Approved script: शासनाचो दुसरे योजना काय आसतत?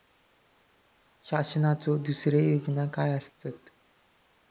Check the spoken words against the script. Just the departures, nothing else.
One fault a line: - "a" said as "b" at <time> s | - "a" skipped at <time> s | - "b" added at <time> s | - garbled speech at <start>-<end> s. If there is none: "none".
none